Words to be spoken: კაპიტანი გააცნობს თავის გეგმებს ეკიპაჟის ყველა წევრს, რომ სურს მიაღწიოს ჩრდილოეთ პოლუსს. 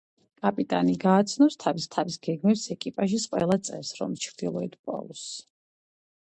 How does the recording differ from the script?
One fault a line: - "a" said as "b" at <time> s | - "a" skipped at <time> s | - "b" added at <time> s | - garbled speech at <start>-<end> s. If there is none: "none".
- "თავის" added at 1.9 s
- "სურს მიაღწიოს" skipped at 4.1 s